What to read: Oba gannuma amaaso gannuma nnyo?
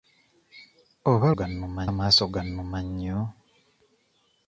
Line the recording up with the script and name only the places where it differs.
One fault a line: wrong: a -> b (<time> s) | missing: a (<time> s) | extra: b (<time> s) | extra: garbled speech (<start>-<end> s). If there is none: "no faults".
no faults